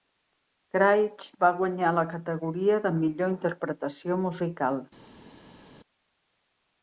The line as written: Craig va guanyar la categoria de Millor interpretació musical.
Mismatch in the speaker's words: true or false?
false